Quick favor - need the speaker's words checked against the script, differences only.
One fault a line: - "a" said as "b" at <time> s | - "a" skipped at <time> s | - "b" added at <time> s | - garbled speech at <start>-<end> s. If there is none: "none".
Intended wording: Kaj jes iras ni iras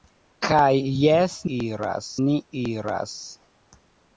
none